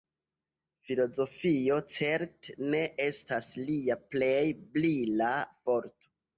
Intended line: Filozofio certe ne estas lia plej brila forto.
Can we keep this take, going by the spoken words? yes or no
yes